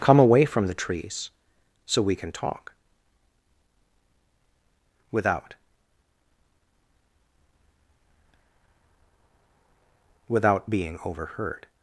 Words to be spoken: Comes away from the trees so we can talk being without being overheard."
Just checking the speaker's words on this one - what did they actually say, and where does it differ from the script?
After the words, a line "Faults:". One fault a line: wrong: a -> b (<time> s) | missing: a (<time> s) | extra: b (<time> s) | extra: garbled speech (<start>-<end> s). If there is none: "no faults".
Come away from the trees so we can talk without without being overheard."
Faults:
wrong: Comes -> Come (0.0 s)
wrong: being -> without (5.1 s)